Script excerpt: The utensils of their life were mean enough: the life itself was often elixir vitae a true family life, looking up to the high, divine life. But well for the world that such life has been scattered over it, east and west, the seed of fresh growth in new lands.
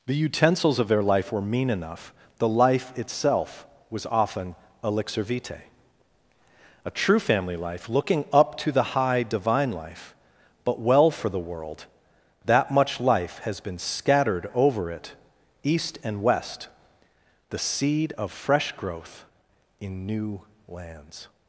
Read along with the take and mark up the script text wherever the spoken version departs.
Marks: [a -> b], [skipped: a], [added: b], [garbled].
The utensils of their life were mean enough: the life itself was often elixir vitae a true family life, looking up to the high, divine life. But well for the world that [such -> much] life has been scattered over it, east and west, the seed of fresh growth in new lands.